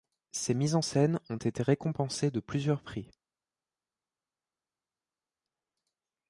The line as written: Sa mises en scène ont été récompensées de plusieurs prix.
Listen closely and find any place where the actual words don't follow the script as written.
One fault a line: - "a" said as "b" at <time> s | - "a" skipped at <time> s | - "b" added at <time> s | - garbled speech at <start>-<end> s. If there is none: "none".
- "Sa" said as "Ses" at 0.3 s